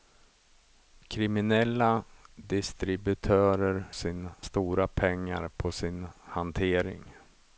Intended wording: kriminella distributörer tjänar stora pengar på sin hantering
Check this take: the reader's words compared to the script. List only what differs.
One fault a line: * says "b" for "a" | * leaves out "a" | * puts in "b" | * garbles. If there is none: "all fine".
* says "sin" for "tjänar"